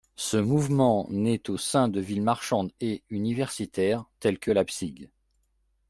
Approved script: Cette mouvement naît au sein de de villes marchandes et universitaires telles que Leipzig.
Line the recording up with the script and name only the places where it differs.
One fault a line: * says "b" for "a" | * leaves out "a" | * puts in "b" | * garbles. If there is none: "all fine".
* says "Ce" for "Cette"
* leaves out "de"